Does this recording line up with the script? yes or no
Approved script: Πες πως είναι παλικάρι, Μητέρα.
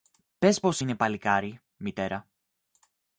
yes